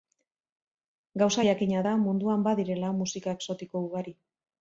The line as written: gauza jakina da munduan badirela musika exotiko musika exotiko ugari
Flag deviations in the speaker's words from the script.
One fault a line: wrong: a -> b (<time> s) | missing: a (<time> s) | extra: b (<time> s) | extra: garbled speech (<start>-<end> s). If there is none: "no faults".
missing: musika exotiko (3.9 s)